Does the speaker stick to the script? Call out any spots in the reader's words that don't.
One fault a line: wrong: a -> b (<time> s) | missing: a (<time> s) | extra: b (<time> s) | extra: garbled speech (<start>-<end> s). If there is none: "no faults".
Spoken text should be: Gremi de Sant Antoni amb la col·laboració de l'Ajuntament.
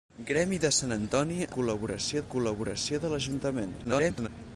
wrong: amb -> col·laboració (1.6 s)
extra: garbled speech (3.8-4.3 s)